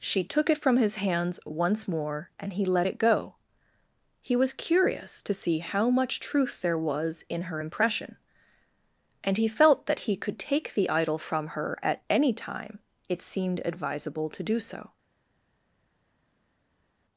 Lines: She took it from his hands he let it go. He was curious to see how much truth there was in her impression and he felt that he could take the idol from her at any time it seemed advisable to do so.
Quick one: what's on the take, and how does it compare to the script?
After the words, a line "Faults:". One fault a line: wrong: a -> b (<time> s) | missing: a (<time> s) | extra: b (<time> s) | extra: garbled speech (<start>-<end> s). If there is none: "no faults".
She took it from his hands once more and he let it go. He was curious to see how much truth there was in her impression and he felt that he could take the idol from her at any time it seemed advisable to do so.
Faults:
extra: once more and (1.5 s)